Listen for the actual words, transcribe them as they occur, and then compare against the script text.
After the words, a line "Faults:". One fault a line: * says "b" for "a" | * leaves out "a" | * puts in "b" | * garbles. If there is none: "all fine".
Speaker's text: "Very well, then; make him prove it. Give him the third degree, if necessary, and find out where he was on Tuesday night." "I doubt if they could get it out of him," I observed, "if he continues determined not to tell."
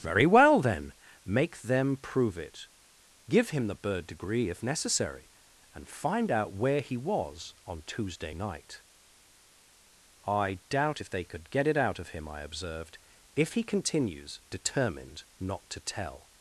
"Very well, then; make them prove it. Give him the bird degree, if necessary, and find out where he was on Tuesday night." "I doubt if they could get it out of him," I observed, "if he continues determined not to tell."
Faults:
* says "them" for "him"
* says "bird" for "third"